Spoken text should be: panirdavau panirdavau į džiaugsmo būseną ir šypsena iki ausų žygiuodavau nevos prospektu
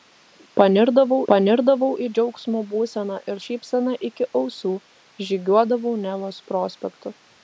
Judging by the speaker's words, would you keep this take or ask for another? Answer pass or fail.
pass